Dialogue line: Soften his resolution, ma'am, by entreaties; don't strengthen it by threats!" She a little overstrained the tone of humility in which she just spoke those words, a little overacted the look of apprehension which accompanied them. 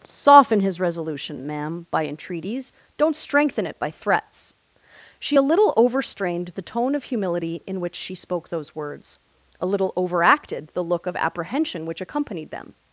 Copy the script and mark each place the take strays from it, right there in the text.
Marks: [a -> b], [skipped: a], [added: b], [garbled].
Soften his resolution, ma'am, by entreaties; don't strengthen it by threats!" She a little overstrained the tone of humility in which she [skipped: just] spoke those words, a little overacted the look of apprehension which accompanied them.